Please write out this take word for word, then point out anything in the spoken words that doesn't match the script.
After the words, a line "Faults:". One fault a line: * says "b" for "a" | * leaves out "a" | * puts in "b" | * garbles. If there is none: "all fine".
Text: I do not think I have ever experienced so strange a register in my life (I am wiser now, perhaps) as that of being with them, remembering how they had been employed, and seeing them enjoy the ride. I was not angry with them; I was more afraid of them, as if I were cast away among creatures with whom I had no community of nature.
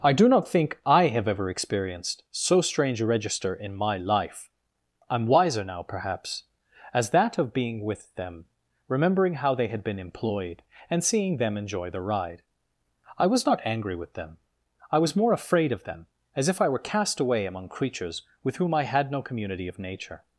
I do not think I have ever experienced so strange a register in my life (I am wiser now, perhaps) as that of being with them, remembering how they had been employed, and seeing them enjoy the ride. I was not angry with them; I was more afraid of them, as if I were cast away among creatures with whom I had no community of nature.
Faults:
all fine